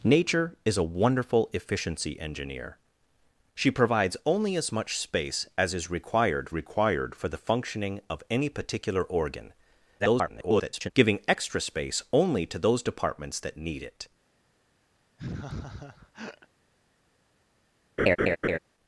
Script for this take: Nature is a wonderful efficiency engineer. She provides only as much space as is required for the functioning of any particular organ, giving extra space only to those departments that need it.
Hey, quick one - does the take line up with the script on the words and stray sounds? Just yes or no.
no